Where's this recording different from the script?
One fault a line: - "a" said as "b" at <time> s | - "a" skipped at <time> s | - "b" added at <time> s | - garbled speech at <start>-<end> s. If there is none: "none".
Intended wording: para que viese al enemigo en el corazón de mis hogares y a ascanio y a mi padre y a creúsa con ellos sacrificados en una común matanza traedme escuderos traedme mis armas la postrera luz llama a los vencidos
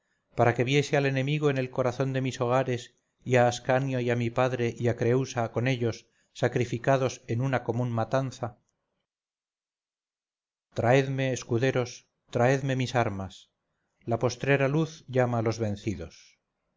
none